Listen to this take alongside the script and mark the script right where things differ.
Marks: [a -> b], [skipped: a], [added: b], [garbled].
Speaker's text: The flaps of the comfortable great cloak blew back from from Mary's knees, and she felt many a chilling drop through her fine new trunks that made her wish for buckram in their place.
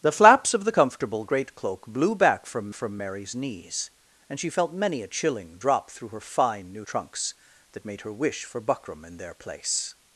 The flaps of the comfortable great cloak blew back from from Mary's knees, and she felt many a chilling drop through her fine new trunks that made her wish for buckram in their place.